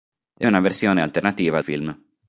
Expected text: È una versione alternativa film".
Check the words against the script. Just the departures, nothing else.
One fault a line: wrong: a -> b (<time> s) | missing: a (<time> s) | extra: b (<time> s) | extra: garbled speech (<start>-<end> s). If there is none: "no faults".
no faults